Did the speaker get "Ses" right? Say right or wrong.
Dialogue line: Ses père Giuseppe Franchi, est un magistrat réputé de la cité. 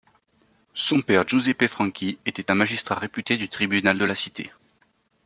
wrong